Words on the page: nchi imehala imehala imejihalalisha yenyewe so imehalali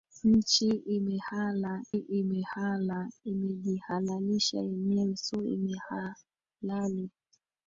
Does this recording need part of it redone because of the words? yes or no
no